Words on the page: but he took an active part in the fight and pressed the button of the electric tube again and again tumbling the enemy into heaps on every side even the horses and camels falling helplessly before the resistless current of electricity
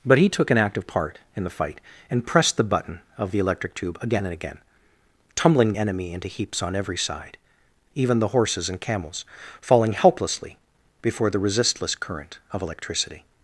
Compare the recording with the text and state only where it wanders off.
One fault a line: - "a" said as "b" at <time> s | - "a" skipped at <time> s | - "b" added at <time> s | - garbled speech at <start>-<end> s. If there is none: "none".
- "the" skipped at 5.7 s